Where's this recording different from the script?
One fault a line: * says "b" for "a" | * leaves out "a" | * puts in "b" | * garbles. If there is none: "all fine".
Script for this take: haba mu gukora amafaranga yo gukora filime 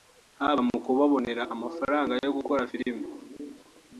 * says "kubabonera" for "gukora"